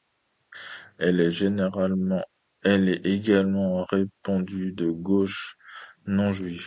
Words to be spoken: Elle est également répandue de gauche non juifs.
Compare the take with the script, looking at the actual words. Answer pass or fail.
pass